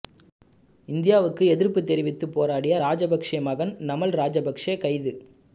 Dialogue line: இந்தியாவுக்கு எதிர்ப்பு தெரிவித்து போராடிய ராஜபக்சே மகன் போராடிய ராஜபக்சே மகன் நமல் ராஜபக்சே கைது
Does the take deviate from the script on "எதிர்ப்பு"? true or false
false